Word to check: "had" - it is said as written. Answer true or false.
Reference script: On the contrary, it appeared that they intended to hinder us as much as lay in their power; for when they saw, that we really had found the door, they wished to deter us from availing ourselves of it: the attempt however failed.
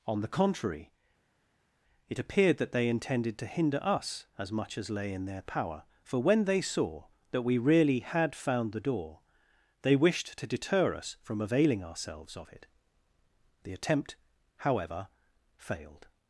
true